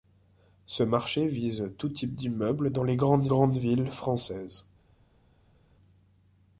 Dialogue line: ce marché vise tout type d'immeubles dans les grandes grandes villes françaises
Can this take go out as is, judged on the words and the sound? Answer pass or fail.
pass